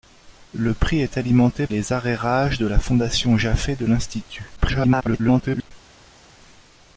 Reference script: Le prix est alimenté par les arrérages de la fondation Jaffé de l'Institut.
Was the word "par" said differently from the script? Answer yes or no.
yes